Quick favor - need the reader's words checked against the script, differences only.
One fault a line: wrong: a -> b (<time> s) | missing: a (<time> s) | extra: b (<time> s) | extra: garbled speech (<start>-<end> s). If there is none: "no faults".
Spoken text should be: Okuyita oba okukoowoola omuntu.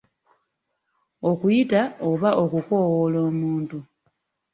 no faults